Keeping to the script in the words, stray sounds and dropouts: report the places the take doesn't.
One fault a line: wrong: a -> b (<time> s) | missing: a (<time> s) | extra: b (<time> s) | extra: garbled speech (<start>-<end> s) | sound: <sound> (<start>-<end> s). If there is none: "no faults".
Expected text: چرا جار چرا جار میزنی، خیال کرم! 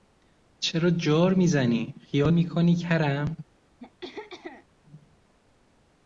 missing: چرا جار (1.3 s)
extra: میکنی (2.3 s)
sound: throat clearing (3.8-4.7 s)